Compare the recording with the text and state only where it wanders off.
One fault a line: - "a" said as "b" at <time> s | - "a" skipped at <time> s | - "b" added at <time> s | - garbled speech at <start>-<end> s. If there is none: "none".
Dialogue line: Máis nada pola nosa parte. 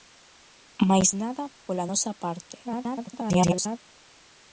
- garbled speech at 2.6-3.8 s